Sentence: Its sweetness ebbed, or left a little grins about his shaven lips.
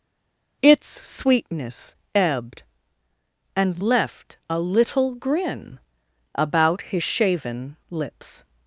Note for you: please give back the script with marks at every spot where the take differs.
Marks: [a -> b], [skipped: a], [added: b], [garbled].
Its sweetness ebbed, [or -> and] left a little [grins -> grin] about his shaven lips.